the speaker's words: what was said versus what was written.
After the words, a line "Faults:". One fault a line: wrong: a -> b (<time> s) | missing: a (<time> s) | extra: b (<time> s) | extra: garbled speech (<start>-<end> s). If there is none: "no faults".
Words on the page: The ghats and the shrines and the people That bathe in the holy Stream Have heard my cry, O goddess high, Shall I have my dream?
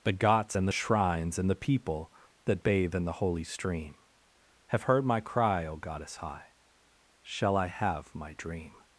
The ghats and the shrines and the people That bathe in the holy Stream Have heard my cry, O goddess high, Shall I have my dream?
Faults:
no faults